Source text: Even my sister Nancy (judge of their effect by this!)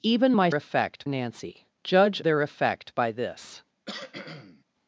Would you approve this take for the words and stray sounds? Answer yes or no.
no